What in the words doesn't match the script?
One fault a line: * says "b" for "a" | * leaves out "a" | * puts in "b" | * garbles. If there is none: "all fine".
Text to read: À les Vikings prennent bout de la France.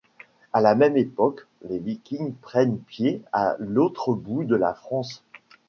* puts in "la même époque"
* puts in "pied à l'autre"